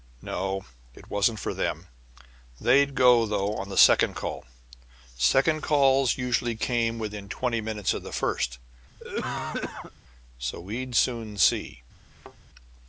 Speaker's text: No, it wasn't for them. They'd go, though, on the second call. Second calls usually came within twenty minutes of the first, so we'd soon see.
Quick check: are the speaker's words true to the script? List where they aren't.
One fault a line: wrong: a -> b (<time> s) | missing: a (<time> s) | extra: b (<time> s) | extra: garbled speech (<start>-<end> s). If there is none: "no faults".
no faults